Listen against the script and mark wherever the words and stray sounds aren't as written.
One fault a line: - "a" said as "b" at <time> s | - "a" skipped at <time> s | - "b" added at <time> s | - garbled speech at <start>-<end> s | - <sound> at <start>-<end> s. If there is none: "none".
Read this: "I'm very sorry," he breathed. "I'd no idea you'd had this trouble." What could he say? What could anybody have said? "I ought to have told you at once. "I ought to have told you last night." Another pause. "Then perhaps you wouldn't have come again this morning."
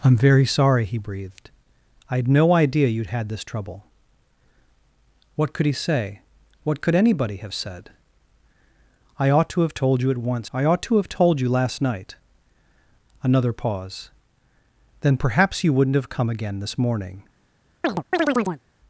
- chirp at 17.8-18.6 s